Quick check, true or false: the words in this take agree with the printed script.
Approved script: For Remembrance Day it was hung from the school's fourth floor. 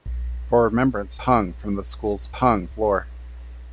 false